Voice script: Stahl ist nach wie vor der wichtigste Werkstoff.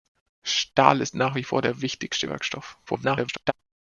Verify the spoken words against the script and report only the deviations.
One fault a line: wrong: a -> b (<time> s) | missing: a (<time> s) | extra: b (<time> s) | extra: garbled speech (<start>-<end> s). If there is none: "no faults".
extra: garbled speech (2.9-3.5 s)